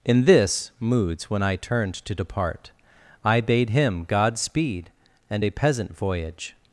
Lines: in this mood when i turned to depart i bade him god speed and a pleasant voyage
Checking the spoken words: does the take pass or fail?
fail